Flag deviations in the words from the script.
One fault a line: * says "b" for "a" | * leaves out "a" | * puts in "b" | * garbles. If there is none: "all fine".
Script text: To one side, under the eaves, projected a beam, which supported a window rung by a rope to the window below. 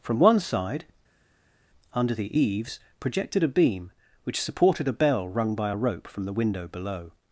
* says "From" for "To"
* says "bell" for "window"
* says "from" for "to"